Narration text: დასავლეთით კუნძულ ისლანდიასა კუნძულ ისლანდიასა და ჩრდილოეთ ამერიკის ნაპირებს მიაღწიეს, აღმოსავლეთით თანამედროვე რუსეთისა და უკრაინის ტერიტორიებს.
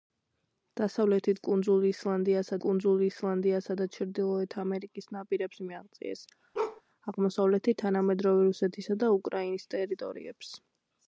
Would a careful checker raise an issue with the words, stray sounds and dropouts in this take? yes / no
yes